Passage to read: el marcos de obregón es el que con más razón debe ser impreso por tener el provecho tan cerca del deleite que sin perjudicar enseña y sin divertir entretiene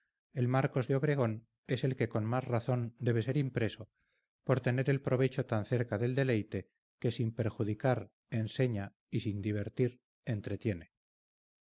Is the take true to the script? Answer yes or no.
yes